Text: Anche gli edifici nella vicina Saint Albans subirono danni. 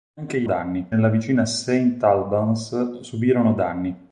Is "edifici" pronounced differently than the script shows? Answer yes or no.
yes